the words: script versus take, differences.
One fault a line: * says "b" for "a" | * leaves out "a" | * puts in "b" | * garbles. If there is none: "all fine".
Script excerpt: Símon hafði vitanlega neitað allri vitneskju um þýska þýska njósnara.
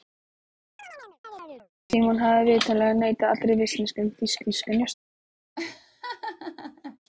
all fine